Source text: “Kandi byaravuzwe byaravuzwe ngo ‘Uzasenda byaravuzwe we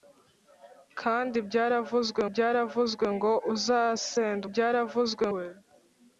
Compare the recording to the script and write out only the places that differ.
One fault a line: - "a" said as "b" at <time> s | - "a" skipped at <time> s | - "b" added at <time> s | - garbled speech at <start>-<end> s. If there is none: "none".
none